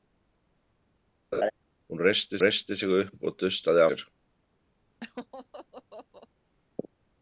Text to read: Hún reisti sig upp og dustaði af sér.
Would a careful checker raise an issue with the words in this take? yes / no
yes